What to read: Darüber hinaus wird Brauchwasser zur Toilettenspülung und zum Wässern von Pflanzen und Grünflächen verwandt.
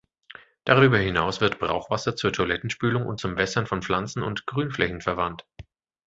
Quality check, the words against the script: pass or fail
pass